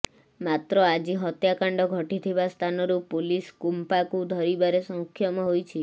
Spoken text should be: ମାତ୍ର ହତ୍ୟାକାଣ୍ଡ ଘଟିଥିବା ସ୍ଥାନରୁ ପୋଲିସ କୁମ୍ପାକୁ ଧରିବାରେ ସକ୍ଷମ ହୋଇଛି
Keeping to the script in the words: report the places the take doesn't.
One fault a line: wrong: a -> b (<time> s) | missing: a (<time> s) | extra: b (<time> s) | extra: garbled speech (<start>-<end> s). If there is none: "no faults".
extra: ଆଜି (0.8 s)